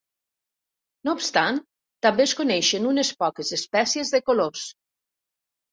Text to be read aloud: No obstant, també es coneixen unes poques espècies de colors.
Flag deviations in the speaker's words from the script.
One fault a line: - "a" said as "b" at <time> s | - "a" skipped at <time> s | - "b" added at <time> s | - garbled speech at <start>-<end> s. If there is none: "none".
none